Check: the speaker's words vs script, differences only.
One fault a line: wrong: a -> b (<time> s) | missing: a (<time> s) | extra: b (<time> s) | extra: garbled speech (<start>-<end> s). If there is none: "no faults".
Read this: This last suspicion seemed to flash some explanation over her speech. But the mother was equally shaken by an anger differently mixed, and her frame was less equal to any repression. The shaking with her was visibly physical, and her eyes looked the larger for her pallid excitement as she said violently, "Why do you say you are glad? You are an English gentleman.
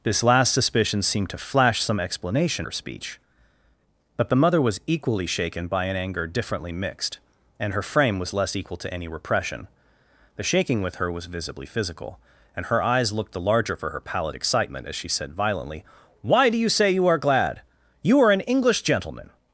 missing: over (2.7 s)